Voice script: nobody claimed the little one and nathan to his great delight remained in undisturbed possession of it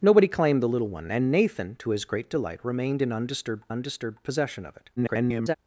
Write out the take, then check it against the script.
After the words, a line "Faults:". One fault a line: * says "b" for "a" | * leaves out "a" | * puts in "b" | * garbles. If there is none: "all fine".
nobody claimed the little one and nathan to his great delight remained in undisturbed undisturbed possession of it [garbled]
Faults:
* puts in "undisturbed"
* garbles